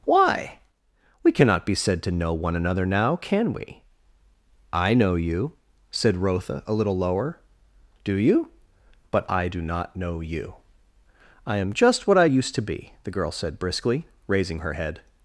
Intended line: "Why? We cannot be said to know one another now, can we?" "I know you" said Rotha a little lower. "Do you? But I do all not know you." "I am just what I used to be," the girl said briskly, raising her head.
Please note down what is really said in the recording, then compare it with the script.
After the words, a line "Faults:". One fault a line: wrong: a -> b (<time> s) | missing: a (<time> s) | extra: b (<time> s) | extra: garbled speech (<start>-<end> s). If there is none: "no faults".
"Why? We cannot be said to know one another now, can we?" "I know you" said Rotha a little lower. "Do you? But I do not know you." "I am just what I used to be," the girl said briskly, raising her head.
Faults:
missing: all (9.6 s)